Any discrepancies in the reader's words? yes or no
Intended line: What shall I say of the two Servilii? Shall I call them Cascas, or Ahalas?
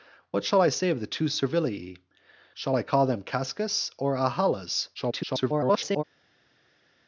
yes